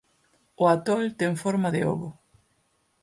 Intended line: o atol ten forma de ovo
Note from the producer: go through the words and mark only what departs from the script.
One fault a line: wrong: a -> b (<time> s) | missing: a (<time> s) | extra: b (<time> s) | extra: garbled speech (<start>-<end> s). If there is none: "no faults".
no faults